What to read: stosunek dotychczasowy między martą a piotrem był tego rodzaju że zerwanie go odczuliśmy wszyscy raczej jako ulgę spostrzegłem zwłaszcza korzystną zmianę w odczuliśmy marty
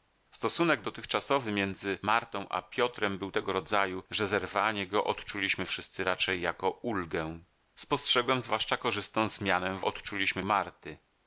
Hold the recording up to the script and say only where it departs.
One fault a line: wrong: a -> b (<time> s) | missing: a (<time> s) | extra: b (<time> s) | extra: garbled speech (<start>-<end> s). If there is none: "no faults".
no faults